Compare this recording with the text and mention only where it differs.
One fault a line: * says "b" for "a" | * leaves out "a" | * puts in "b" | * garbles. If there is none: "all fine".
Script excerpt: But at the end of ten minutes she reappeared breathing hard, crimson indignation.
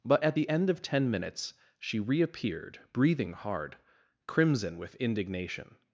* puts in "with"